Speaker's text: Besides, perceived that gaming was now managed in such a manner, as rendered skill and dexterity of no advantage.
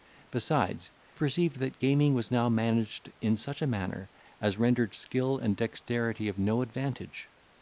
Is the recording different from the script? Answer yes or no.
no